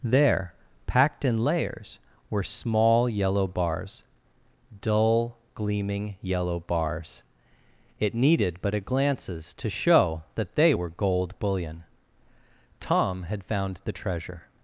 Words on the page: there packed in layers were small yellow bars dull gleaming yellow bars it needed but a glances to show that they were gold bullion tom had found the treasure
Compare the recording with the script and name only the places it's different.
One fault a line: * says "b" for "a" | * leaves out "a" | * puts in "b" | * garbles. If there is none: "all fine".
all fine